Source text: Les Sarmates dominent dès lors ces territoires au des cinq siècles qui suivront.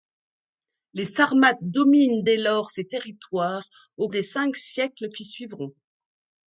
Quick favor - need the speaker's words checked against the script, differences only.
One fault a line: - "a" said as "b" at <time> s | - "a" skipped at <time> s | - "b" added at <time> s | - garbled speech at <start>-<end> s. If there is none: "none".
none